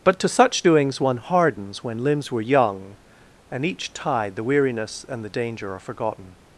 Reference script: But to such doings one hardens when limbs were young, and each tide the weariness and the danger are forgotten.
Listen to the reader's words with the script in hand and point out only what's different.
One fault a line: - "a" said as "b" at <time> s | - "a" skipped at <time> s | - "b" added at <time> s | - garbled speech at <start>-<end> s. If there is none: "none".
none